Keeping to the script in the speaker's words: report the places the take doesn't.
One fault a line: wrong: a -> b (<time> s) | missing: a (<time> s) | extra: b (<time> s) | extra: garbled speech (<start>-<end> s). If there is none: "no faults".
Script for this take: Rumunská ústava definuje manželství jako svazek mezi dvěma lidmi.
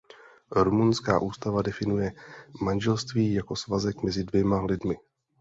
no faults